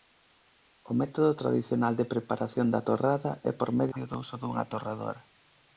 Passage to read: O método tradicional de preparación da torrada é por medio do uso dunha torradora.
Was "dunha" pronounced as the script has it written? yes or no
yes